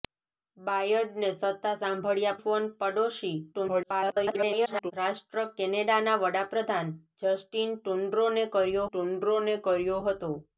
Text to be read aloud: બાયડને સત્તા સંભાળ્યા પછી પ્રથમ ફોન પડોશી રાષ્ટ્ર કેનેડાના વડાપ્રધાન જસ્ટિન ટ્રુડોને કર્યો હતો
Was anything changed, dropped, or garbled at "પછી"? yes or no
yes